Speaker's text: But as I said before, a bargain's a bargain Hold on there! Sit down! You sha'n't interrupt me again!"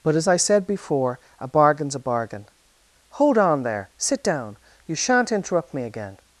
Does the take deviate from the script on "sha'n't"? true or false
false